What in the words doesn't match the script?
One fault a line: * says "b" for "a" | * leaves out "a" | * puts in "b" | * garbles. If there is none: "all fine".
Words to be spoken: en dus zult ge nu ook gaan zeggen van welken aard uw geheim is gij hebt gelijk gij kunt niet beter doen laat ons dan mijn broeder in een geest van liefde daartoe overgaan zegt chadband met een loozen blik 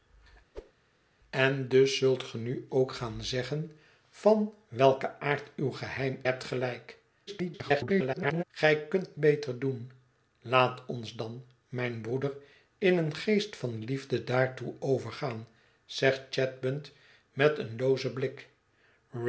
* leaves out "is gij"
* garbles
* leaves out "niet"